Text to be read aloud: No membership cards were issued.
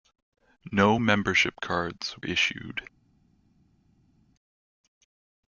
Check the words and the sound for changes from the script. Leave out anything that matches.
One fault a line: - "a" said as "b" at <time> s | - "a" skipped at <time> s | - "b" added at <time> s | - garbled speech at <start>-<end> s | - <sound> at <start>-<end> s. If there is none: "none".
- "were" skipped at 2.2 s